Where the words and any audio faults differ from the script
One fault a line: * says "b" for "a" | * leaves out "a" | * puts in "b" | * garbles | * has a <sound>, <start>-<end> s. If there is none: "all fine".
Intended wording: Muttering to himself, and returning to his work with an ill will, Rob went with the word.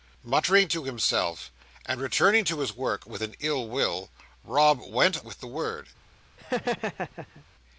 * has a laugh, 6.4-7.5 s